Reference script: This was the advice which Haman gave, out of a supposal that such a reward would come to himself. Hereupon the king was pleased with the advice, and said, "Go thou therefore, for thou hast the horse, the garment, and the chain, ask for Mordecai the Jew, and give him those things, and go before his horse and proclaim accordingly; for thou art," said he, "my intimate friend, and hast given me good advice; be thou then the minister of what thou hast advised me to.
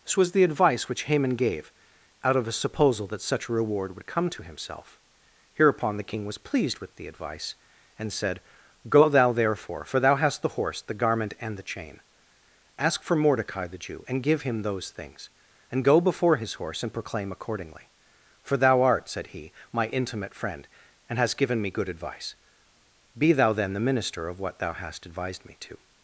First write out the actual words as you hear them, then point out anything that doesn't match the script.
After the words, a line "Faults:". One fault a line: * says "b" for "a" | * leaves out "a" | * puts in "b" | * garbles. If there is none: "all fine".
This was the advice which Haman gave, out of a supposal that such a reward would come to himself. Hereupon the king was pleased with the advice, and said, "Go thou therefore, for thou hast the horse, the garment, and the chain, ask for Mordecai the Jew, and give him those things, and go before his horse and proclaim accordingly; for thou art," said he, "my intimate friend, and hast given me good advice; be thou then the minister of what thou hast advised me to.
Faults:
all fine